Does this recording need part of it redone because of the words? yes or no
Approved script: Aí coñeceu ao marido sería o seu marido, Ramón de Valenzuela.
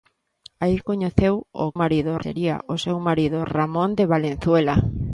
no